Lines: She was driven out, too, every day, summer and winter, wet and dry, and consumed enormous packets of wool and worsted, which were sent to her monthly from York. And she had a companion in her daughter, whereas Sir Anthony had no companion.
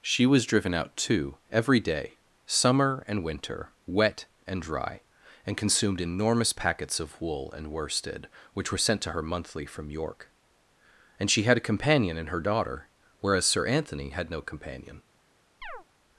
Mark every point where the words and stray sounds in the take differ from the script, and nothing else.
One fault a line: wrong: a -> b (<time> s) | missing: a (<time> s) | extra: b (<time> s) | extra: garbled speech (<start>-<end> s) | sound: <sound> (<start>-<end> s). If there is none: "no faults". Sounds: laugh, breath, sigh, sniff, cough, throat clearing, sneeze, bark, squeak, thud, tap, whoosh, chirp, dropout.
sound: chirp (15.6-15.8 s)